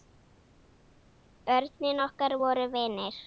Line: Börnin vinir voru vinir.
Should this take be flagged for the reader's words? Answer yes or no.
yes